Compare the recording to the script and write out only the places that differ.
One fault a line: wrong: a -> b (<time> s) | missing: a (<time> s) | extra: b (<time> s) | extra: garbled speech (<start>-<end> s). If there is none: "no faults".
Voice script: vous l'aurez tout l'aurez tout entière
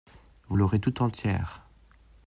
missing: l'aurez tout (1.0 s)